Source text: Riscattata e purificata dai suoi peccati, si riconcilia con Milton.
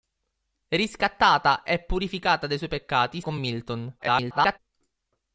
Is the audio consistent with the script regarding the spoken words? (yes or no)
no